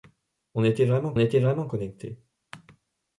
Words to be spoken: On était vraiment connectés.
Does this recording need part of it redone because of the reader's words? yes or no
yes